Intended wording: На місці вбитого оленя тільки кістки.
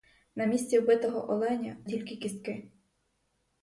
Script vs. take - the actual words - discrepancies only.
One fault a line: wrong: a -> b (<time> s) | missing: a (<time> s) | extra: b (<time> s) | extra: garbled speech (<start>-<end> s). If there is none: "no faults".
no faults